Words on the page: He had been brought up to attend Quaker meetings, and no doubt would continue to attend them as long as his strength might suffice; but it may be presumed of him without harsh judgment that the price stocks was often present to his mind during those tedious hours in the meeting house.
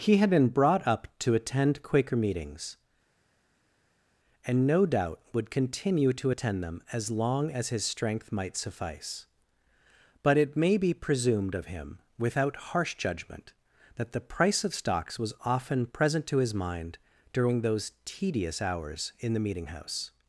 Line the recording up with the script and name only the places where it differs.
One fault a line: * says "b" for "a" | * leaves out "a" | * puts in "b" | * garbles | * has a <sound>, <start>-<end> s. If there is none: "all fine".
* puts in "of"